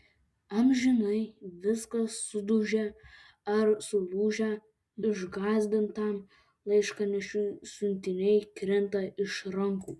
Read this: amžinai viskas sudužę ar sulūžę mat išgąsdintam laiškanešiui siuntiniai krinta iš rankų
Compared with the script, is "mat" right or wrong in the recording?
wrong